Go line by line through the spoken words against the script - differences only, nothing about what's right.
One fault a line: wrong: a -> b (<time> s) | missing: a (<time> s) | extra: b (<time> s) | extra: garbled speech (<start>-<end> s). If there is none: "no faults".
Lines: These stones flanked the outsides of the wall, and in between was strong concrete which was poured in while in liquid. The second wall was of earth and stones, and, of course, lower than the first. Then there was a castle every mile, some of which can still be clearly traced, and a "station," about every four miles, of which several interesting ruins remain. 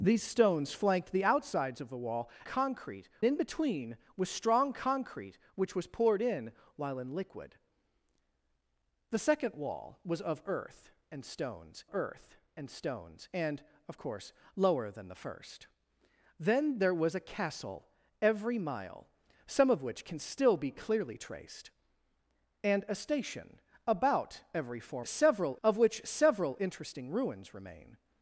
wrong: and -> concrete (2.4 s)
extra: earth (11.9 s)
extra: stones and (12.7 s)
wrong: miles -> several (25.0 s)